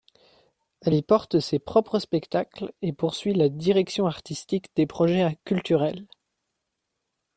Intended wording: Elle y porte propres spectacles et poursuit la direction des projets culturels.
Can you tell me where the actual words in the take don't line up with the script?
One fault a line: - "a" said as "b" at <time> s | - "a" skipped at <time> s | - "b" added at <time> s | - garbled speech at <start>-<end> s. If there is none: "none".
- "ses" added at 1.4 s
- "artistique" added at 4.1 s